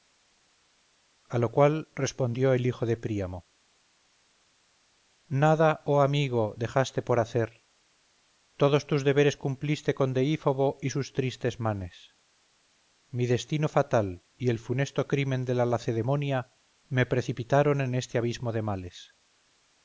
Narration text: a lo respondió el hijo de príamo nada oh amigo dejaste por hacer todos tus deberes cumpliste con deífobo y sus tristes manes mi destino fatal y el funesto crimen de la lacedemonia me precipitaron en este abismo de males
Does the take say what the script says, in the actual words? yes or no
no